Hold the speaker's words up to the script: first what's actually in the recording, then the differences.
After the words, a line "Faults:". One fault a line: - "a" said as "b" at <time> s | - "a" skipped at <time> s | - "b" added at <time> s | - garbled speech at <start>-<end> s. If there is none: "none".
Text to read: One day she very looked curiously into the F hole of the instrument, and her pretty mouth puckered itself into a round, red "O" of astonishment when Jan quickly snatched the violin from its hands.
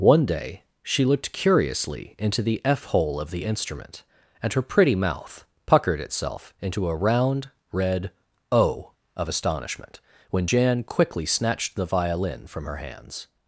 One day she looked curiously into the F hole of the instrument, and her pretty mouth puckered itself into a round, red "O" of astonishment when Jan quickly snatched the violin from her hands.
Faults:
- "very" skipped at 1.1 s
- "its" said as "her" at 12.6 s